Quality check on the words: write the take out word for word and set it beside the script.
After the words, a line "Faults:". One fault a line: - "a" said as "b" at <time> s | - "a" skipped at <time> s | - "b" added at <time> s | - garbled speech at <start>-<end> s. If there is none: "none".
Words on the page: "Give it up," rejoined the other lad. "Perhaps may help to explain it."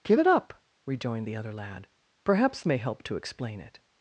"Give it up," rejoined the other lad. "Perhaps may help to explain it."
Faults:
none